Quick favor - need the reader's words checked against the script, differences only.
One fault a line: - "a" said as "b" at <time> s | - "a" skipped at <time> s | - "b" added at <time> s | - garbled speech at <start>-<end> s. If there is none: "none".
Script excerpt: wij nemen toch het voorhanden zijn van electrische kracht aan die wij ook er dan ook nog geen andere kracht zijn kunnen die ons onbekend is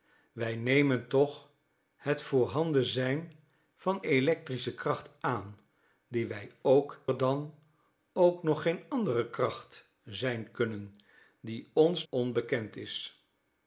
none